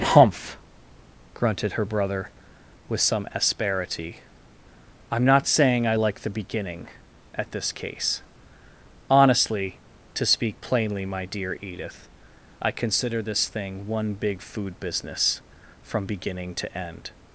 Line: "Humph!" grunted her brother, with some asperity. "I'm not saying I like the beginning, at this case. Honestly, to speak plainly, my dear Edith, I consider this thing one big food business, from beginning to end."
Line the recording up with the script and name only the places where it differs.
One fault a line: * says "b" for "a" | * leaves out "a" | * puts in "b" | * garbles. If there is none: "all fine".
all fine